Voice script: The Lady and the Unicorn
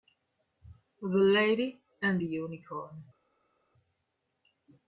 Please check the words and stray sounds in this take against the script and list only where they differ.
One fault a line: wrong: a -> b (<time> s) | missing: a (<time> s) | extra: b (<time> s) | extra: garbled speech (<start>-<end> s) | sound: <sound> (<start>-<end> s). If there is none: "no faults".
no faults